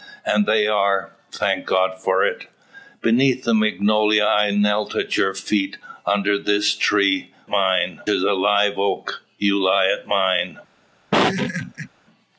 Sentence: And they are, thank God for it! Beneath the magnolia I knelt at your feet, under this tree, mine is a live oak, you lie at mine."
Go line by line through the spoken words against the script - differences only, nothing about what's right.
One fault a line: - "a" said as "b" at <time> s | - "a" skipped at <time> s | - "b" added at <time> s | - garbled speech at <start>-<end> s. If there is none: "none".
none